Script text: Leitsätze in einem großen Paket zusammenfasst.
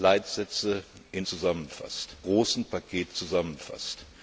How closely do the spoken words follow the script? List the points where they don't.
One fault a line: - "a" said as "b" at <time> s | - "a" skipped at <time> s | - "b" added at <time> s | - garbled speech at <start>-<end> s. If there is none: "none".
- "einem" said as "zusammenfasst" at 1.3 s